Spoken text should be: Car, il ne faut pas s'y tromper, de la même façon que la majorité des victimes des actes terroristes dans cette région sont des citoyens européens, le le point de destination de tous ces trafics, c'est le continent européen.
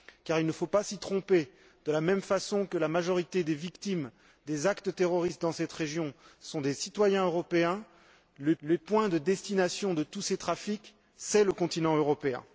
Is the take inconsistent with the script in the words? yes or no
no